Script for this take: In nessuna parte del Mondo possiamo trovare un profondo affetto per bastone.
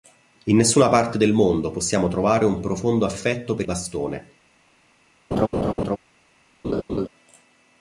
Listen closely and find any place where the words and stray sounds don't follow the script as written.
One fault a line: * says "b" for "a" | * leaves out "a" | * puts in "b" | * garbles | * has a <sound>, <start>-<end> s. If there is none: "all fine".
* has a laugh, 5.3-6.0 s
* has a laugh, 6.6-7.1 s